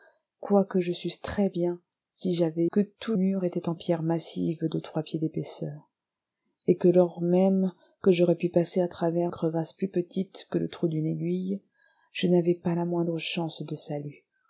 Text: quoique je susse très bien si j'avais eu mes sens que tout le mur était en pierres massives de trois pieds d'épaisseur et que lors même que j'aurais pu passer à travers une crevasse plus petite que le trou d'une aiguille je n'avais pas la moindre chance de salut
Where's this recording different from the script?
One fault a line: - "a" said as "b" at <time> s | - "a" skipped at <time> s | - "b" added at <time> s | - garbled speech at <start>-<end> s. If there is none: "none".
- "eu mes sens" skipped at 2.6 s
- "le" skipped at 3.2 s
- "une" skipped at 9.3 s